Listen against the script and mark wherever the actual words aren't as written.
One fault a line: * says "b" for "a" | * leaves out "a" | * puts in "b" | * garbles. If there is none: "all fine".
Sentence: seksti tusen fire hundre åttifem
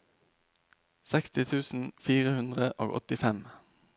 * puts in "og"